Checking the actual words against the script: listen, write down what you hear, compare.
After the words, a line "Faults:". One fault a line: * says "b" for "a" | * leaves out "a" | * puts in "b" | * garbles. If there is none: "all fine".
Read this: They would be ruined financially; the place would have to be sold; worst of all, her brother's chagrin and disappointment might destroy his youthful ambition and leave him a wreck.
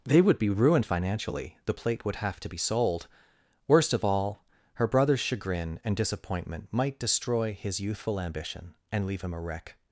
They would be ruined financially; the plate would have to be sold; worst of all, her brother's chagrin and disappointment might destroy his youthful ambition and leave him a wreck.
Faults:
* says "plate" for "place"